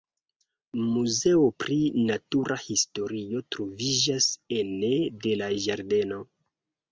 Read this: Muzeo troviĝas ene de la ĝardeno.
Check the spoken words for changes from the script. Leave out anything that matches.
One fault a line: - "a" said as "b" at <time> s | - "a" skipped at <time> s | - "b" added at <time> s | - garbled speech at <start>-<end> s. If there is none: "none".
- "pri natura historio" added at 1.6 s